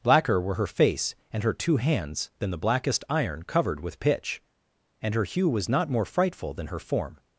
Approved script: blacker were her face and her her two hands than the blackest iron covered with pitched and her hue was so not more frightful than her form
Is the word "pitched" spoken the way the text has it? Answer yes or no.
no